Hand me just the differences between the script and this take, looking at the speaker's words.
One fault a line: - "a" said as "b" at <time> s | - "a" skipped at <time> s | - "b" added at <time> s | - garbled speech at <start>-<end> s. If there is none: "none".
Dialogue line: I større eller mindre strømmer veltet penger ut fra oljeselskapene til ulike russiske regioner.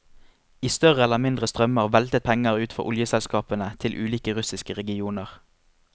none